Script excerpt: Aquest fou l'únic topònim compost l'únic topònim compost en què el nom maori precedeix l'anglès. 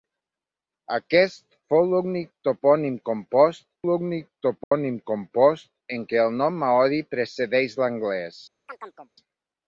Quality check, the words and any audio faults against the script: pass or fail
fail